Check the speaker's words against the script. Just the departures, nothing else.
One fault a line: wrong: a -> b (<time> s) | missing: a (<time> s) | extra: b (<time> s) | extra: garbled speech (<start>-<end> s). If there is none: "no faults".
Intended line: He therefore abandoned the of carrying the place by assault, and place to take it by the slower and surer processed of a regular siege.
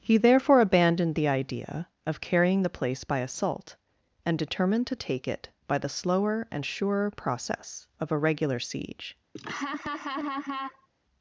extra: idea (1.3 s)
wrong: place -> determined (4.4 s)
wrong: processed -> process (7.1 s)